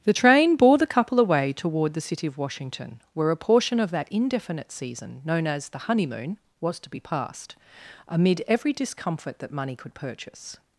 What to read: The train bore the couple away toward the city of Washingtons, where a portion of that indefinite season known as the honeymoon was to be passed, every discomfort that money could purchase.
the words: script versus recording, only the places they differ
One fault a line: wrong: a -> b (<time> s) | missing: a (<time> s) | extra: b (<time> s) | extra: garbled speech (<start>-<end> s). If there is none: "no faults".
wrong: Washingtons -> Washington (2.4 s)
extra: amid (8.1 s)